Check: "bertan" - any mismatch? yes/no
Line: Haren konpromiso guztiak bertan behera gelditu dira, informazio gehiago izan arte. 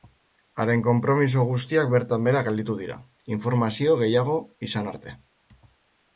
no